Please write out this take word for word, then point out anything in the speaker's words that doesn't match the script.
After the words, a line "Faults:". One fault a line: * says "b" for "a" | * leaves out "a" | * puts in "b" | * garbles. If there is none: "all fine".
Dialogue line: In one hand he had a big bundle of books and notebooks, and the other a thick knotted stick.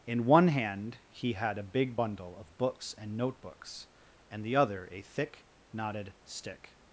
In one hand he had a big bundle of books and notebooks, and the other a thick knotted stick.
Faults:
all fine